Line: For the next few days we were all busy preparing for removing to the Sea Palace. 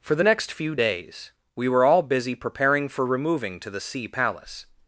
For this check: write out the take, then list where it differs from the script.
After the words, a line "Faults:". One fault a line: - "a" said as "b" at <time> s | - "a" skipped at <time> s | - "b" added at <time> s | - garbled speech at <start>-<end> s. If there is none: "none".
For the next few days we were all busy preparing for removing to the Sea Palace.
Faults:
none